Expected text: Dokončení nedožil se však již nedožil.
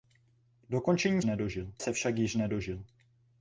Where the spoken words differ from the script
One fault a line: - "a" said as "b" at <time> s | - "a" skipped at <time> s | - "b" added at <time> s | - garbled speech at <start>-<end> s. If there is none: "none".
none